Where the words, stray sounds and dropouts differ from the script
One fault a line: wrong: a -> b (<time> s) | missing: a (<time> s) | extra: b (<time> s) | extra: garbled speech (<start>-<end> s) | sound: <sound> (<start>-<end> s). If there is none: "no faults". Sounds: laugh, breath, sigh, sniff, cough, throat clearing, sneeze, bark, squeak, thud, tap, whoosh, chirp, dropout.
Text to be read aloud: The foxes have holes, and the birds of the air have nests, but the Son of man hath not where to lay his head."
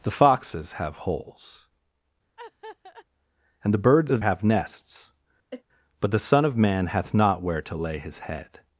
sound: laugh (2.4-3.1 s)
missing: the air (4.2 s)
sound: sneeze (5.5-5.6 s)